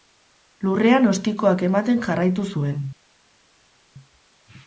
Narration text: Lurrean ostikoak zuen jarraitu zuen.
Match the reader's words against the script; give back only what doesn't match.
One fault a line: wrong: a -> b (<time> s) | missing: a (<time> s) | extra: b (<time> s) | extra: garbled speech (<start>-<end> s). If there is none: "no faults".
wrong: zuen -> ematen (1.7 s)